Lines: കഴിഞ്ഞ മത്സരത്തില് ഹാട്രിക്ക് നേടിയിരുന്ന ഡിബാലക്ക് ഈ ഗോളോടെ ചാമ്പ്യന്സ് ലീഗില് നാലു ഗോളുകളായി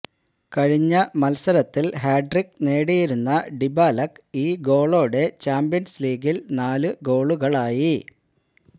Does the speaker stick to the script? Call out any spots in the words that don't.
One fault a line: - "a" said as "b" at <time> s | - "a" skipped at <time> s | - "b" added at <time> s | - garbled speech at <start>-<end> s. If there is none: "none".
none